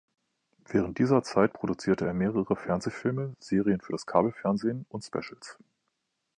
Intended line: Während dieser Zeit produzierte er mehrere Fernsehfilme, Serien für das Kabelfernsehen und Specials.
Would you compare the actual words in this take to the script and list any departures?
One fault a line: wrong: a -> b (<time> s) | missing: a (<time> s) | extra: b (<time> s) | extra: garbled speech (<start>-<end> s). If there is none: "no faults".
no faults